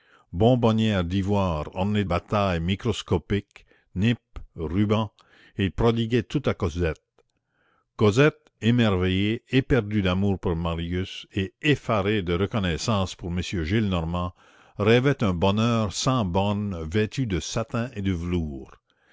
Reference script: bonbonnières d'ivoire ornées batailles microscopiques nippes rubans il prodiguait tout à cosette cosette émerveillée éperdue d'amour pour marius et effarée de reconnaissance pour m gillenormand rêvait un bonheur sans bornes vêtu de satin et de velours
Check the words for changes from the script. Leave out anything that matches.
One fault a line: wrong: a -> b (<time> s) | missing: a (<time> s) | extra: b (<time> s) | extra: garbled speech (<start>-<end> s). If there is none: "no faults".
no faults